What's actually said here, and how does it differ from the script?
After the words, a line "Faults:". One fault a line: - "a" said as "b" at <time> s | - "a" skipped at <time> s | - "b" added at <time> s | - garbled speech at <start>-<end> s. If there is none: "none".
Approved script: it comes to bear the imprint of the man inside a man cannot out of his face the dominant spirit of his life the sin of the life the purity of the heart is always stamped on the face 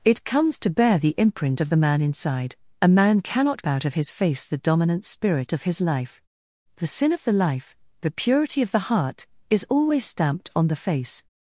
it comes to bear the imprint of the man inside a man cannot out of his face the dominant spirit of his life the sin of the life the purity of the heart is always stamped on the face
Faults:
none